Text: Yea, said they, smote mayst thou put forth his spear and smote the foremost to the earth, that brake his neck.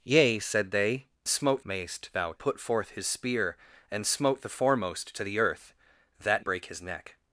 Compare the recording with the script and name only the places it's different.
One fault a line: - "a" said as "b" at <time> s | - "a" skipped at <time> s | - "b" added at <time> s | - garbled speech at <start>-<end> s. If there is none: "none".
none